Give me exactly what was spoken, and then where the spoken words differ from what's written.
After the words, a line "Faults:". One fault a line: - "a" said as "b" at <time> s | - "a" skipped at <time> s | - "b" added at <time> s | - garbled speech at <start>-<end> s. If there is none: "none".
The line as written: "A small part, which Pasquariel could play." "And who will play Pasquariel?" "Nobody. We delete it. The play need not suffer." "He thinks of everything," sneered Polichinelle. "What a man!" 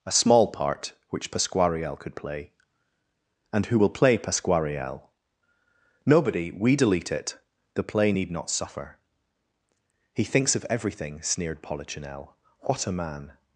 "A small part, which Pasquariel could play." "And who will play Pasquariel?" "Nobody. We delete it. The play need not suffer." "He thinks of everything," sneered Polichinelle. "What a man!"
Faults:
none